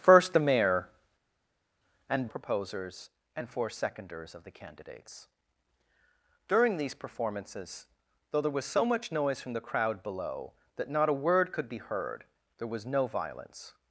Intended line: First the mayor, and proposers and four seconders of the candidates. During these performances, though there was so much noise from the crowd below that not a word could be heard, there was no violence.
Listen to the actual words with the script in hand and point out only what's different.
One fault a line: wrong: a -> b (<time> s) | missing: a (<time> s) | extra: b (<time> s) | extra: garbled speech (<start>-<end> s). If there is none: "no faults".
no faults